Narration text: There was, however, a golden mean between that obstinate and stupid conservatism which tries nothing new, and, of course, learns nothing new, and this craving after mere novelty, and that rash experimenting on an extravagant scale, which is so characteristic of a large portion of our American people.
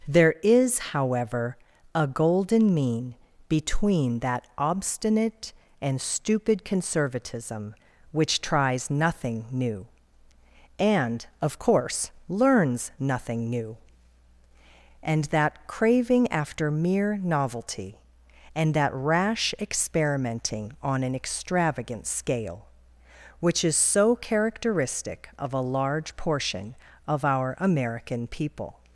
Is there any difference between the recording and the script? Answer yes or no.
yes